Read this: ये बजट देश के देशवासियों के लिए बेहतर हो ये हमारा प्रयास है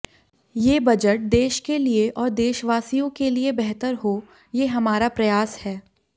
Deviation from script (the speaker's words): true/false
true